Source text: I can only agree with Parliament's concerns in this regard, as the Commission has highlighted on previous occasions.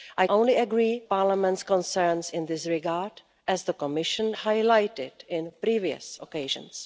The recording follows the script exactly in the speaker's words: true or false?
false